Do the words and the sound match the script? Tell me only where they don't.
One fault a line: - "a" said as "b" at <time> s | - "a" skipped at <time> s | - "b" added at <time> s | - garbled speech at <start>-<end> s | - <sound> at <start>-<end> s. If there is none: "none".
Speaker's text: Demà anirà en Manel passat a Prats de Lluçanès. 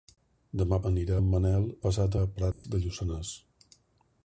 - dropout at 2.5-2.6 s